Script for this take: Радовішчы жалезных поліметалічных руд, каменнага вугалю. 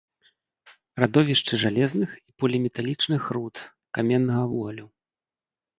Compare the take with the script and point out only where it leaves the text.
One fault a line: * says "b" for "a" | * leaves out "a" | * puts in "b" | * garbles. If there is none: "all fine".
* puts in "і"